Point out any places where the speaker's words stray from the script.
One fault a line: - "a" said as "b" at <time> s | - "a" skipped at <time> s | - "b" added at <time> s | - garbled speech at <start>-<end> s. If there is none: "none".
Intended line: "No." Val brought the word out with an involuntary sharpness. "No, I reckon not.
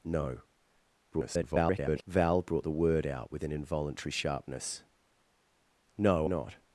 - garbled speech at 1.1-2.0 s
- "I reckon" skipped at 6.3 s